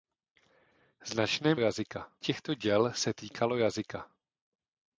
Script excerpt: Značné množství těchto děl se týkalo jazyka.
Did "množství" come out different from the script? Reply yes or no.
yes